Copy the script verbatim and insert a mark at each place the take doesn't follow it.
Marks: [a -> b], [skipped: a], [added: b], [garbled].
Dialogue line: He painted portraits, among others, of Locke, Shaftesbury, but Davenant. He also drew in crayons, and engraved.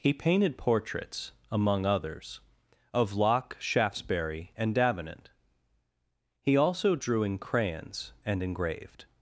He painted portraits, among others, of Locke, Shaftesbury, [but -> and] Davenant. He also drew in crayons, and engraved.